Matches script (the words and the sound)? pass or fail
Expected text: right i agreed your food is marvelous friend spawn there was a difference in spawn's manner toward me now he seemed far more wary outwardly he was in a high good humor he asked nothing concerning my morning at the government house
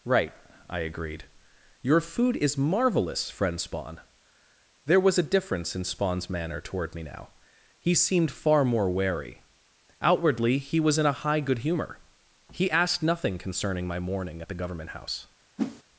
fail